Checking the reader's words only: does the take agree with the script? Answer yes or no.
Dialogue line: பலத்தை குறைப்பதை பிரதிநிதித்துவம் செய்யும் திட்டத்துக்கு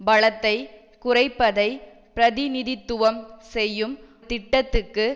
yes